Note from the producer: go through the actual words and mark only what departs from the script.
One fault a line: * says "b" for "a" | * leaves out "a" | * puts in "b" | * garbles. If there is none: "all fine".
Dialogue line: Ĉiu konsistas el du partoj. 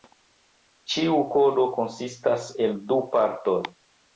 * puts in "kodo"